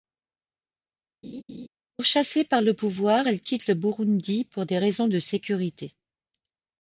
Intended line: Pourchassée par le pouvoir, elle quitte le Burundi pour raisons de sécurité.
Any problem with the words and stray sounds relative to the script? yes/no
yes